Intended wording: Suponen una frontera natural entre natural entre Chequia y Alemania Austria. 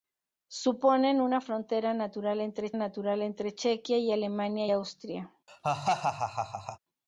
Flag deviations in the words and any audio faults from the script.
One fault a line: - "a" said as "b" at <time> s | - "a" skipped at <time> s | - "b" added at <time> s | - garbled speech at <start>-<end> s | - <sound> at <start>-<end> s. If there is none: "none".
- laugh at 5.5-6.8 s